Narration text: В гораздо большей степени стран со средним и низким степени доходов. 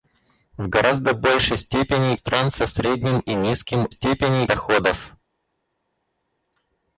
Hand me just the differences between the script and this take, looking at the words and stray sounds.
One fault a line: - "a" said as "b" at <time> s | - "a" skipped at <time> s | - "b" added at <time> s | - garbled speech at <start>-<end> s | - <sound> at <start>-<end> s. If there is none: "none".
none